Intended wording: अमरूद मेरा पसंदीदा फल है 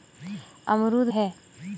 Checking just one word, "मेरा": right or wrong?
wrong